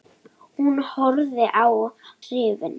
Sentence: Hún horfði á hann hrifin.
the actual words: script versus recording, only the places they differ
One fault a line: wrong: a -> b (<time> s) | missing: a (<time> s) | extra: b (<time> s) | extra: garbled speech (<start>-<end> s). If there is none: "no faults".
missing: hann (1.7 s)